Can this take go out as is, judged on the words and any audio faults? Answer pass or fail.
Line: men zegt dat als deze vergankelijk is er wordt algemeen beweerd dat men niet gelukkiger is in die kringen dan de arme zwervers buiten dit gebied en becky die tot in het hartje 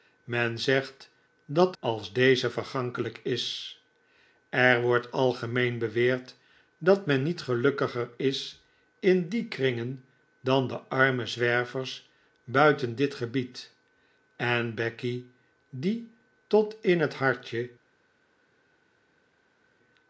pass